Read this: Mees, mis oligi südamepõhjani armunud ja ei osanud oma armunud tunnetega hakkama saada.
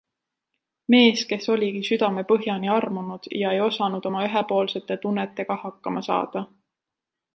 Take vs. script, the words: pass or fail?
fail